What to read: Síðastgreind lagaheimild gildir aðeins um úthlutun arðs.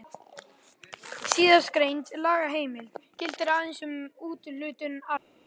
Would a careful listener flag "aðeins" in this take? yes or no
no